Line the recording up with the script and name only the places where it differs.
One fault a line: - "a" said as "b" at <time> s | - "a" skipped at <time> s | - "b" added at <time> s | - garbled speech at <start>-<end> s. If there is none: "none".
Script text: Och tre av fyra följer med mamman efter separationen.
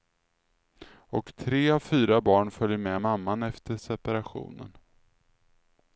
- "barn" added at 2.2 s